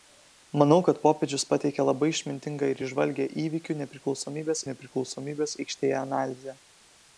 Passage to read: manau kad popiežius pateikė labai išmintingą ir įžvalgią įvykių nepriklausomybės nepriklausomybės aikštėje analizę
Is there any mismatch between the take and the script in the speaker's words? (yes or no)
no